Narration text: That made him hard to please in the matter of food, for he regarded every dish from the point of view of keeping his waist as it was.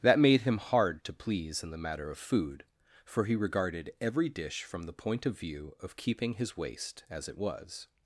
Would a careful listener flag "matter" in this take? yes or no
no